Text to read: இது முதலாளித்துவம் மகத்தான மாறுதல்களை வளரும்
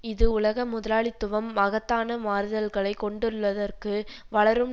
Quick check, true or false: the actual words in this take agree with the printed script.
false